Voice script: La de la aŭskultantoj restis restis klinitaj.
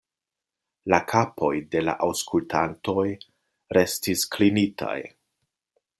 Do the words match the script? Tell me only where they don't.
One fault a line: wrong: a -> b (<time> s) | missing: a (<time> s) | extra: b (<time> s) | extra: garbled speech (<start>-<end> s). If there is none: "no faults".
extra: kapoj (1.1 s)
missing: restis (4.3 s)